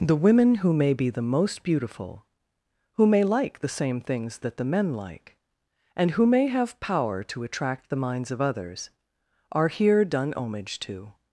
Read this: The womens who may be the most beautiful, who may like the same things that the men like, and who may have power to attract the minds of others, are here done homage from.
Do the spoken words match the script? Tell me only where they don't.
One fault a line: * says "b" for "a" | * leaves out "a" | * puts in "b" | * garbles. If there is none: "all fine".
* says "women" for "womens"
* says "to" for "from"